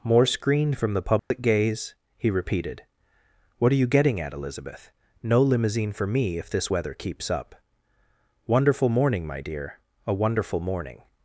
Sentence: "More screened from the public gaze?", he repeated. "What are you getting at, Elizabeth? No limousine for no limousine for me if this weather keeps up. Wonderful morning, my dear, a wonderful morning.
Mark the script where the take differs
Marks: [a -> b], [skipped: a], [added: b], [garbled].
"More screened from the public gaze?", he repeated. "What are you getting at, Elizabeth? No limousine for [skipped: no limousine for] me if this weather keeps up. Wonderful morning, my dear, a wonderful morning.